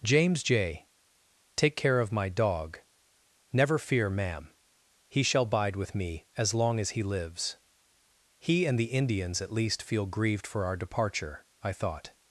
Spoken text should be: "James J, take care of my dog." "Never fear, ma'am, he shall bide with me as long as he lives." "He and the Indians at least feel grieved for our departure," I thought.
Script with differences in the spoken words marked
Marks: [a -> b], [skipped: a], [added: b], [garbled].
"James J, take care of my dog." "Never fear, ma'am, he shall bide with me as long as he lives." "He and the Indians at least feel grieved for our departure," I thought.